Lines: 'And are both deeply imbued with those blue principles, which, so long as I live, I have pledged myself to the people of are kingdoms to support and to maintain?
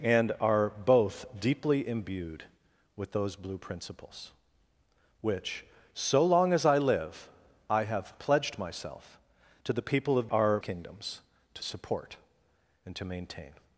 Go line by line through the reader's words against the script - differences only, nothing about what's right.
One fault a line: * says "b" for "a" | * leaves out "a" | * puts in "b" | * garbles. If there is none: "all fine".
all fine